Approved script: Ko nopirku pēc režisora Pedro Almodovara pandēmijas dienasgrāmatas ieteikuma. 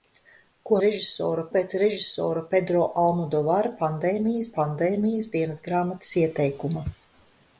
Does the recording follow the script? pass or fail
fail